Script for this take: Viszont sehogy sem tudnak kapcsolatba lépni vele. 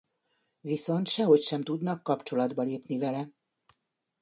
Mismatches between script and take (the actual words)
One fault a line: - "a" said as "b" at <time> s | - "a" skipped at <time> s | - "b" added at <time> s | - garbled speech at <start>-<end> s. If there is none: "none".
none